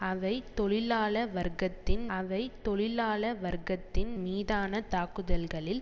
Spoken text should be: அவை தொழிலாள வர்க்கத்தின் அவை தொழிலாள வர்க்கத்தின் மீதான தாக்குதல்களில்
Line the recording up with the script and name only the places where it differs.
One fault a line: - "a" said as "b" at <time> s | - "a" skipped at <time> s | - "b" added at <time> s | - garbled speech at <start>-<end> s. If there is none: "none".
none